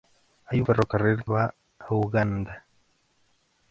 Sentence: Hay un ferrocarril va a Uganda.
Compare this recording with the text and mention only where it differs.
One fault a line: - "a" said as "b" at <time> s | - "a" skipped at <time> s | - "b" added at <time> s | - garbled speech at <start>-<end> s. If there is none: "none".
none